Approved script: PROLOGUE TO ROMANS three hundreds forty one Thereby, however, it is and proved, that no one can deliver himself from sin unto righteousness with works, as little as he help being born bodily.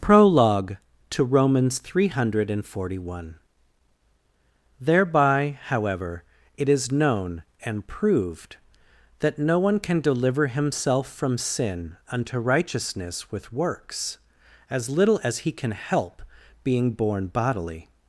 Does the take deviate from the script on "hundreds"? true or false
true